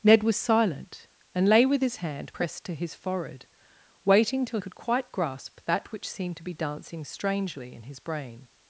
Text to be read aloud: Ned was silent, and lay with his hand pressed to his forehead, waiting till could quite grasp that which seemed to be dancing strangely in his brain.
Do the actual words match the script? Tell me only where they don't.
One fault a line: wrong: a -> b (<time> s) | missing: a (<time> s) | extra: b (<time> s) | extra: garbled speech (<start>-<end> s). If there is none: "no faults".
no faults